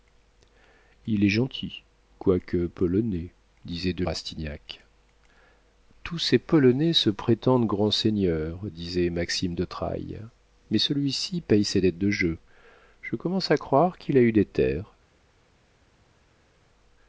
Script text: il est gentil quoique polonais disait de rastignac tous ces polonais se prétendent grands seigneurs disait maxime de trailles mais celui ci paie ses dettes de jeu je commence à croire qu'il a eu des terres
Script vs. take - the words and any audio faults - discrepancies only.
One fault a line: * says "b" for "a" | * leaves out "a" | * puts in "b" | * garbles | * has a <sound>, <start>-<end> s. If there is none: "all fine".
all fine